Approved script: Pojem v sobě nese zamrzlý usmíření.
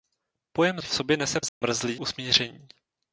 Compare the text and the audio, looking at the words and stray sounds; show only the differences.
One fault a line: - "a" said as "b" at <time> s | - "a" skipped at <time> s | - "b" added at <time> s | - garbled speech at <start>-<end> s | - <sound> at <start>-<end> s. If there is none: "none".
- dropout at 1.5-1.6 s